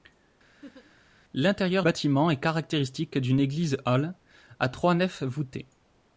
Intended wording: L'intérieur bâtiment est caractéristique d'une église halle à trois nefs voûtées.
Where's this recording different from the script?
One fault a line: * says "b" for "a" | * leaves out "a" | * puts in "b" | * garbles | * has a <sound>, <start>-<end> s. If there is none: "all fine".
* has a laugh, 0.6-1.0 s